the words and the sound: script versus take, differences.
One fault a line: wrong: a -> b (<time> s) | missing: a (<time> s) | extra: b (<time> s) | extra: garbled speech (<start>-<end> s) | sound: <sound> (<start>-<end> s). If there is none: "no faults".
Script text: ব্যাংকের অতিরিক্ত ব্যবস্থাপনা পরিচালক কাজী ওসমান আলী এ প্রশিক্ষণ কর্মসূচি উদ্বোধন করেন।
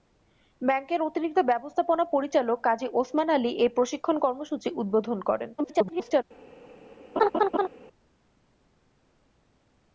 extra: garbled speech (5.6-6.2 s)
sound: laugh (7.2-7.7 s)